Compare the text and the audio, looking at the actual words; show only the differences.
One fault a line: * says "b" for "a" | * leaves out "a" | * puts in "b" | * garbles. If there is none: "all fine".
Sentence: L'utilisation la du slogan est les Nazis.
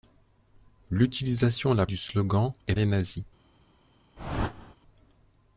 all fine